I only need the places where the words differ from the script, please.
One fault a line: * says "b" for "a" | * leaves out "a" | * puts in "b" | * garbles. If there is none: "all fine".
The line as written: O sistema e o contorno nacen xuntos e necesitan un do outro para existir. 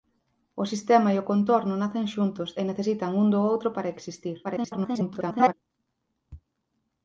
* garbles